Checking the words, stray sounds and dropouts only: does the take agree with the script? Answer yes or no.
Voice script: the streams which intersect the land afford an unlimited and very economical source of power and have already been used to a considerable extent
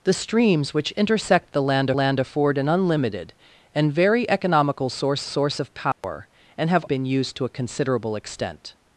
no